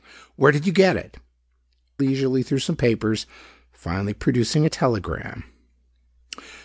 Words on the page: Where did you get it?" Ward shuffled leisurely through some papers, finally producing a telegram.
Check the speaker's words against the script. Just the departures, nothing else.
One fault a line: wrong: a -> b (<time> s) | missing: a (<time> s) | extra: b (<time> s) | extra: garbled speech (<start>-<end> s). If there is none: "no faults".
missing: Ward shuffled (1.2 s)